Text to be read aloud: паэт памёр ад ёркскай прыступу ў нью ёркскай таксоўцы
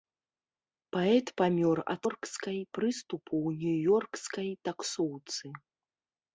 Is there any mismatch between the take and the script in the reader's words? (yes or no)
no